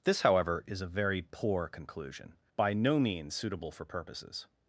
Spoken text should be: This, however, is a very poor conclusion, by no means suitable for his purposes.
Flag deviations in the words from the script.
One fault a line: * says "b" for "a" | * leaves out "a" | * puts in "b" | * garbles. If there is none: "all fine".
* leaves out "his"